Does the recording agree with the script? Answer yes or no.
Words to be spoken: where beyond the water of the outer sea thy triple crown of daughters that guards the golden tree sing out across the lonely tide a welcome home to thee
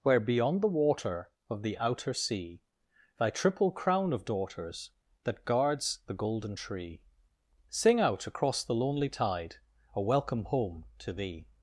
yes